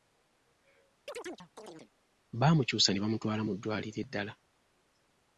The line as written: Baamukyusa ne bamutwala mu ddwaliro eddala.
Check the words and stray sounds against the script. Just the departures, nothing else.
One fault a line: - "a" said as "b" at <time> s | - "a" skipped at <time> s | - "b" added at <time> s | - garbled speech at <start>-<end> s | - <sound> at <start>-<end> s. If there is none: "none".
- chirp at 1.1-1.9 s